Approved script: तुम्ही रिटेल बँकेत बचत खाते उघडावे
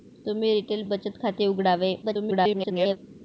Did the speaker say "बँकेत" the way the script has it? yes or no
no